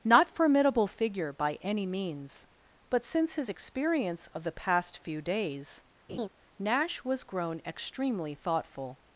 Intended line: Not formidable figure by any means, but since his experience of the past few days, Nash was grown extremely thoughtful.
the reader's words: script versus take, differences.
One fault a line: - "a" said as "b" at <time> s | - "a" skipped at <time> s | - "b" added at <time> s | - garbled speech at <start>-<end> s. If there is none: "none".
none